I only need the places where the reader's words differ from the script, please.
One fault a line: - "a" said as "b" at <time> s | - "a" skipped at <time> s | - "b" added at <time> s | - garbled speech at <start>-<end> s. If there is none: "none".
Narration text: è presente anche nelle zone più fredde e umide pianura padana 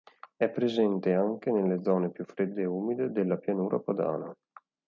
- "della" added at 3.1 s